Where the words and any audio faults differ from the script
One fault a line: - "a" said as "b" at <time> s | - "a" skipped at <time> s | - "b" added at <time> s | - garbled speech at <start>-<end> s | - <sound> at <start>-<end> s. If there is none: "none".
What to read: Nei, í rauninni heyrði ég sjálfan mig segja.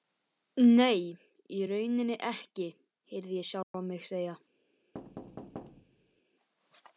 - "ekki" added at 2.3 s
- dropout at 3.6-3.7 s
- thud at 4.9-6.2 s